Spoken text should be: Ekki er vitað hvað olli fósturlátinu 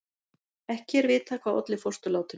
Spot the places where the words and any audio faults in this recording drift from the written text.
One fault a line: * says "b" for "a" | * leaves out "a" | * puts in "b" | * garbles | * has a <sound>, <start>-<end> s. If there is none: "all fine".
all fine